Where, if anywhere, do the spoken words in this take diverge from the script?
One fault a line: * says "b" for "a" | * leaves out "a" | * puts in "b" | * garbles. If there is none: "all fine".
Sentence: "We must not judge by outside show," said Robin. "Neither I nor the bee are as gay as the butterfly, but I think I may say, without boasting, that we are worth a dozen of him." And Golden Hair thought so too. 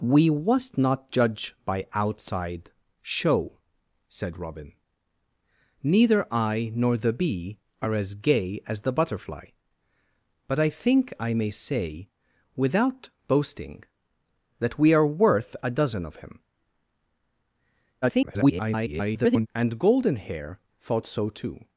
* garbles